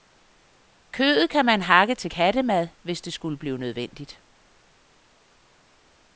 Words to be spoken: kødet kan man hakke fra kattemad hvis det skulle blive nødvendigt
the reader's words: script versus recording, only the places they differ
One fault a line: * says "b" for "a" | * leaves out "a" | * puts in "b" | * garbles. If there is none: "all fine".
* says "til" for "fra"